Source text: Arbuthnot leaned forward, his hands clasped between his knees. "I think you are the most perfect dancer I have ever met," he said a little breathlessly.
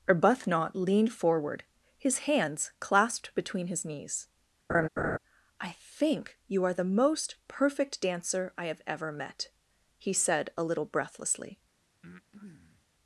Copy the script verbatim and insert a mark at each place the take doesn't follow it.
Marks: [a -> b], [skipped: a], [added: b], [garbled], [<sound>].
Arbuthnot leaned forward, his hands clasped between his knees. [laugh] "I think you are the most perfect dancer I have ever met," he said a little breathlessly. [breath]